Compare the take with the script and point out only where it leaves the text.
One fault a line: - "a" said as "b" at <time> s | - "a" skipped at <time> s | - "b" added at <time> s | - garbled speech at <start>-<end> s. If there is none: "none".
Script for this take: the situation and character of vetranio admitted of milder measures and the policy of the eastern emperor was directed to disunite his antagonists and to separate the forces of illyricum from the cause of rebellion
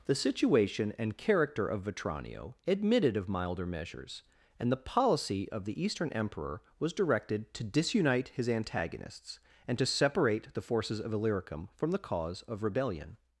none